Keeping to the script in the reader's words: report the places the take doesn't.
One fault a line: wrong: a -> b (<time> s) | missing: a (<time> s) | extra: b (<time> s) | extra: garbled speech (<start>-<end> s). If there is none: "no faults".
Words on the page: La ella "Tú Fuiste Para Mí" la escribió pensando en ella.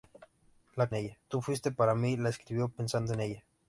no faults